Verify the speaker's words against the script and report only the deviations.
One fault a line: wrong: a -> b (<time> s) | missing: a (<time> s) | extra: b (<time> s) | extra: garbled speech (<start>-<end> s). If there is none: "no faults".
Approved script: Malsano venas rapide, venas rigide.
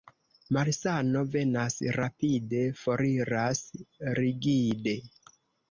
wrong: venas -> foriras (2.8 s)